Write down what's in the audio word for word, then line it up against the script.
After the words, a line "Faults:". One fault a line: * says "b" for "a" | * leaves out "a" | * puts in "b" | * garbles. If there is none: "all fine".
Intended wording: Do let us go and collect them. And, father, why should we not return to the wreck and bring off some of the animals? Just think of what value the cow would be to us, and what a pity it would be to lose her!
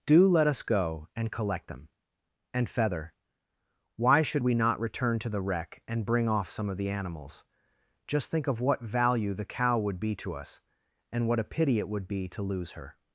Do let us go and collect them. And, feather, why should we not return to the wreck and bring off some of the animals? Just think of what value the cow would be to us, and what a pity it would be to lose her!
Faults:
* says "feather" for "father"